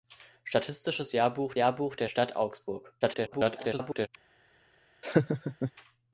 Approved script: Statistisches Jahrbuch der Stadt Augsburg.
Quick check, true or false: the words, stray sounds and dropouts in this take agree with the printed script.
false